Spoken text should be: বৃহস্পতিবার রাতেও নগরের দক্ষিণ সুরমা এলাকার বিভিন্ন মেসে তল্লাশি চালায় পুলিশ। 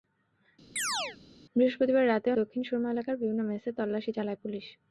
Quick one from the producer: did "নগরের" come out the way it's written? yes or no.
no